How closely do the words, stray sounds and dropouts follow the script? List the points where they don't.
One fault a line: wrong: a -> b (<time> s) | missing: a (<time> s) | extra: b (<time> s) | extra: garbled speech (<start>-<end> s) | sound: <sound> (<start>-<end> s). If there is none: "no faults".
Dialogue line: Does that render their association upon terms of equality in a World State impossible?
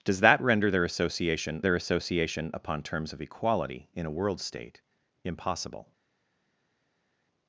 extra: their association (1.6 s)